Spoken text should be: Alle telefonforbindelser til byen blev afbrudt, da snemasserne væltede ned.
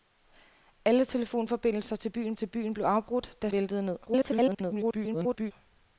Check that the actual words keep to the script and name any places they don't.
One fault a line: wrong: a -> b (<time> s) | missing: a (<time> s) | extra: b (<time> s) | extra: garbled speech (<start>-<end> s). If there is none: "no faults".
extra: til byen (2.3 s)
missing: snemasserne (3.5 s)
extra: garbled speech (4.1-5.5 s)